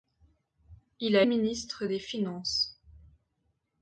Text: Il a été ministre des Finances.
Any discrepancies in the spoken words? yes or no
yes